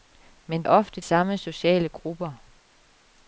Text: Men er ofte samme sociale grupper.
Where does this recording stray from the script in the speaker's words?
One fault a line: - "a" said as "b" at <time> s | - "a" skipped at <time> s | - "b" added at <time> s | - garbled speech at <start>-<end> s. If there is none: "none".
none